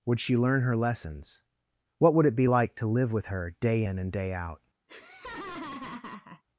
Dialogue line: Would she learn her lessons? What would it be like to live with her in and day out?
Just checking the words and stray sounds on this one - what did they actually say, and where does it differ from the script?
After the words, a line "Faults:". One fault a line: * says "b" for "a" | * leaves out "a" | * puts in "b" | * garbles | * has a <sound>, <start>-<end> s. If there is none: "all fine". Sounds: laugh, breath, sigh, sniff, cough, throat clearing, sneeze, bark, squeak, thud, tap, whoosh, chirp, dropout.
Would she learn her lessons? What would it be like to live with her day in and day out?
Faults:
* puts in "day"
* has a laugh, 4.9-6.4 s